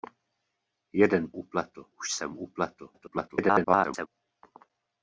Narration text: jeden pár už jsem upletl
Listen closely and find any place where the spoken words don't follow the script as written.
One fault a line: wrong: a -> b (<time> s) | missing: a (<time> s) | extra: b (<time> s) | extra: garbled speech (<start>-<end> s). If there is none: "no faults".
wrong: pár -> upletl (1.3 s)
extra: garbled speech (2.9-4.1 s)